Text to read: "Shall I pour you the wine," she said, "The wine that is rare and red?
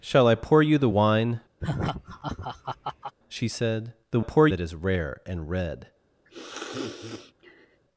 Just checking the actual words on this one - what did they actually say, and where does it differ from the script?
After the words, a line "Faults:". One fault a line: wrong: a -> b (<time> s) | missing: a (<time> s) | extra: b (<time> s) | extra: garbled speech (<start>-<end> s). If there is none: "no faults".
"Shall I pour you the wine," she said, "The pour that is rare and red?
Faults:
wrong: wine -> pour (4.2 s)